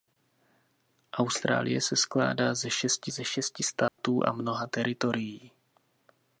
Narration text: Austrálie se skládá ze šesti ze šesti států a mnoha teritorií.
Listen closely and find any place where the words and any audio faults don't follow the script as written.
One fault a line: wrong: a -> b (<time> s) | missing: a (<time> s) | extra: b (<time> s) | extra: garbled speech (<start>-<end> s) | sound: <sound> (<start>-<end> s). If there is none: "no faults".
sound: dropout (3.9-4.0 s)